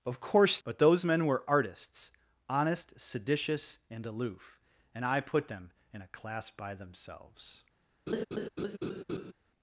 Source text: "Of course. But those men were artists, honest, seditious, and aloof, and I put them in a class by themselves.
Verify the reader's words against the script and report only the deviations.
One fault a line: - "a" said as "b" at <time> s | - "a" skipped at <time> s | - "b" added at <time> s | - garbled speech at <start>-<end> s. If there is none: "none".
none